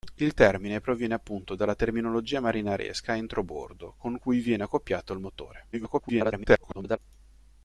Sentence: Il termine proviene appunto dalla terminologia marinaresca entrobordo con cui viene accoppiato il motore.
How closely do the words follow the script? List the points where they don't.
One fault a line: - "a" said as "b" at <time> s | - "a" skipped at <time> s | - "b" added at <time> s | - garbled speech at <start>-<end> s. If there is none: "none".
- garbled speech at 5.7-7.0 s